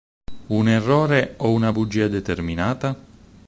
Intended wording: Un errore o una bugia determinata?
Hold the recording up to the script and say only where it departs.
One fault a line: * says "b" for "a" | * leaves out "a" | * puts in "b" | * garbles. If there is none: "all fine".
all fine